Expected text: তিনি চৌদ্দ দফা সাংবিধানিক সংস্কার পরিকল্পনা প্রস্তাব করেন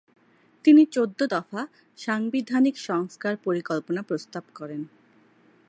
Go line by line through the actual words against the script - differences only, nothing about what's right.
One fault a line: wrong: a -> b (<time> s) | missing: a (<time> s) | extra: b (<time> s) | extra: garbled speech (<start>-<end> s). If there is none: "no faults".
no faults